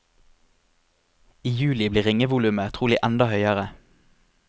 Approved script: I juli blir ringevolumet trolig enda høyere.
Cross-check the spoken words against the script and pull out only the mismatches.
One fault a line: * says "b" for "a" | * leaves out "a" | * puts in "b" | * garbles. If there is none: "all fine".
all fine